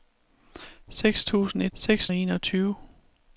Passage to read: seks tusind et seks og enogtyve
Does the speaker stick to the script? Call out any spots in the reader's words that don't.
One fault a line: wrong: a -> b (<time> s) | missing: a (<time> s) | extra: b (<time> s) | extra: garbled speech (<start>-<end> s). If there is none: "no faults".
no faults